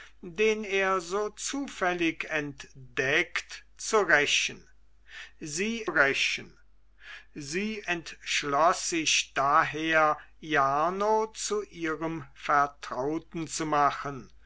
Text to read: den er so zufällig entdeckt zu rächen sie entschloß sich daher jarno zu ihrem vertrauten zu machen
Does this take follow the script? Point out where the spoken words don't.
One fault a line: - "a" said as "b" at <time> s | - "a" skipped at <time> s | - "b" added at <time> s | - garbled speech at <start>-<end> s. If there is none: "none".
- "rächen sie" added at 5.9 s